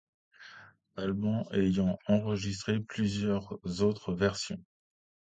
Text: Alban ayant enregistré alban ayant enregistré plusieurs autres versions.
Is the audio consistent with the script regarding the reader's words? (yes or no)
no